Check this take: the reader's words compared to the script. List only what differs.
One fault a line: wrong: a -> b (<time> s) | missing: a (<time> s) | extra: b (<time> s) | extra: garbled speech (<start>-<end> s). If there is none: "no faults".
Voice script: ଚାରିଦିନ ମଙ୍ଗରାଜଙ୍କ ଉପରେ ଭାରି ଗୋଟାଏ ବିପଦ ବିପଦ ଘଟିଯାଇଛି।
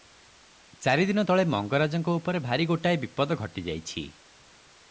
extra: ତଳେ (1.2 s)
missing: ବିପଦ (3.4 s)